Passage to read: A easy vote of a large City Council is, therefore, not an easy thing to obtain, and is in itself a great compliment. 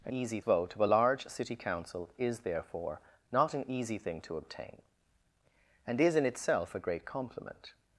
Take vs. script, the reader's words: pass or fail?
pass